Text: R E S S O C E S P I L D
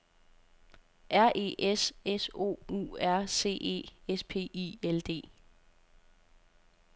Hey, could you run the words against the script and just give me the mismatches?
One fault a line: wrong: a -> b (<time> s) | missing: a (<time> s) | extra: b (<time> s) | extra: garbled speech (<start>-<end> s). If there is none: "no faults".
extra: U R (2.7 s)